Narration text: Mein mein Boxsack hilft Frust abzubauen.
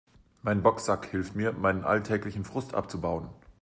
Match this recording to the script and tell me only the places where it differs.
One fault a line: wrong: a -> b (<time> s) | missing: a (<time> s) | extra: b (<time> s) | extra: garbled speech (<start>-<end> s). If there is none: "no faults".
missing: mein (0.6 s)
extra: mir meinen alltäglichen (1.3 s)